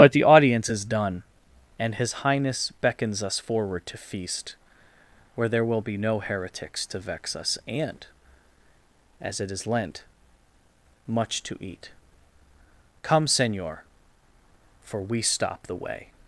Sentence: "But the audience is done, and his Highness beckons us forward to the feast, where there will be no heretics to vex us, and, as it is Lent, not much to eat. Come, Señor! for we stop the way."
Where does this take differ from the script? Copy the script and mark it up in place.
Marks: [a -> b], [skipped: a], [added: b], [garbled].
"But the audience is done, and his Highness beckons us forward to [skipped: the] feast, where there will be no heretics to vex us, and, as it is Lent, [skipped: not] much to eat. Come, Señor! for we stop the way."